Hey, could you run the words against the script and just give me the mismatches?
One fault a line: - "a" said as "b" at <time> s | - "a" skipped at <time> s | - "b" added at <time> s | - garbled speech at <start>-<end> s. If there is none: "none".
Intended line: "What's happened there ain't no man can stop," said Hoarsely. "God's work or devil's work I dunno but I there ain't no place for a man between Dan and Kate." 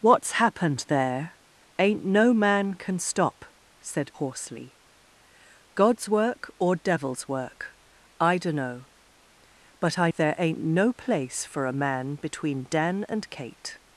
none